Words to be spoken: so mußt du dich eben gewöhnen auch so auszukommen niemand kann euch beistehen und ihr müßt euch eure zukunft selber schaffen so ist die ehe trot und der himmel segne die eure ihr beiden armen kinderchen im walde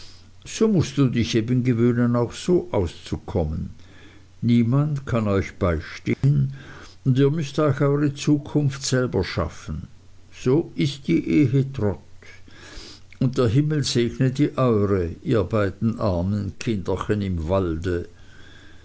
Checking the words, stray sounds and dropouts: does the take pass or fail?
fail